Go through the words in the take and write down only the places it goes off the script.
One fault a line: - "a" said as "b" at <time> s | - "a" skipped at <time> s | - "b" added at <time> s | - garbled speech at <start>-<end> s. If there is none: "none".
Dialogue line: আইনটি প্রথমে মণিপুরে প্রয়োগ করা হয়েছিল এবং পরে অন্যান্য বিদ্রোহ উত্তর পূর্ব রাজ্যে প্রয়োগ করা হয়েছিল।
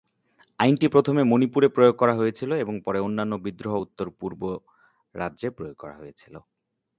none